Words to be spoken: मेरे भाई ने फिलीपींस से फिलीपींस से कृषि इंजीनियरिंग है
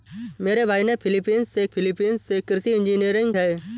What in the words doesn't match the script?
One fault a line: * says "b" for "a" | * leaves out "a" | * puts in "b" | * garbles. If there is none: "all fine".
all fine